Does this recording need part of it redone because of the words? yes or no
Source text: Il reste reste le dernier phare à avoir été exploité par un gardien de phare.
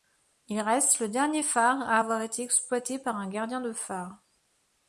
yes